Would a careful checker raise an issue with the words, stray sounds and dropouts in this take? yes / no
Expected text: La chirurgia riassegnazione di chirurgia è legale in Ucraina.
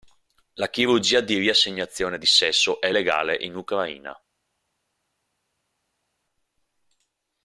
yes